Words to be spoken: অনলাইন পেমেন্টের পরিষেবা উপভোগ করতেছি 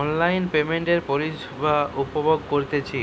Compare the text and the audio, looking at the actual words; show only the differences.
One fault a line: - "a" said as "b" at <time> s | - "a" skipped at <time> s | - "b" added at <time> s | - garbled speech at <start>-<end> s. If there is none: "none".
none